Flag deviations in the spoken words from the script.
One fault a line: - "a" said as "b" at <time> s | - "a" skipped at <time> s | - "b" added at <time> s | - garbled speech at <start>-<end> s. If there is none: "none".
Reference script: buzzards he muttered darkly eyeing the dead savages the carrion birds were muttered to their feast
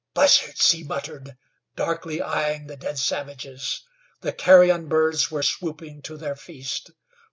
- "muttered" said as "swooping" at 5.4 s